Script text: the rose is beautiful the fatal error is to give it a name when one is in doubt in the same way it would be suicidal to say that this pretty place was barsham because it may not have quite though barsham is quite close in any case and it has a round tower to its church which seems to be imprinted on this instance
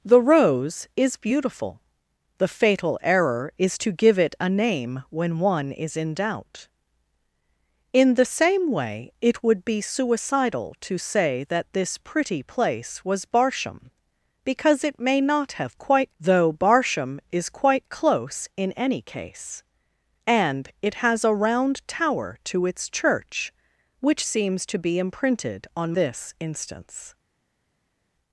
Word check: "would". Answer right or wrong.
right